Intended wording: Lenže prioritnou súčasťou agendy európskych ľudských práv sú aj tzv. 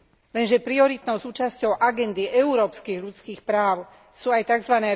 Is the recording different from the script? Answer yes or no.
no